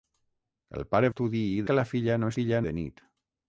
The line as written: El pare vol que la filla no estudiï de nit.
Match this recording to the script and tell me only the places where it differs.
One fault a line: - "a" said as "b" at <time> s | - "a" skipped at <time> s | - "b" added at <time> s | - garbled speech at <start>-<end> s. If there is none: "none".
- "vol" said as "estudiï" at 1.1 s
- "estudiï" said as "filla" at 2.4 s